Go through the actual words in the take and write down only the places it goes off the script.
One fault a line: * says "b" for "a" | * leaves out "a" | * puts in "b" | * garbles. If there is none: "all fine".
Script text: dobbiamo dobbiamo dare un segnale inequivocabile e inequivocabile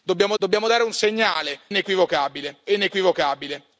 all fine